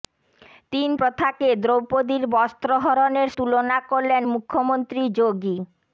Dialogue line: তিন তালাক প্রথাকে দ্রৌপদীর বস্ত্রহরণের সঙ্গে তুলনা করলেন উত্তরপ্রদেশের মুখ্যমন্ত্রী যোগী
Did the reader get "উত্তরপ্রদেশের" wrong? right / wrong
wrong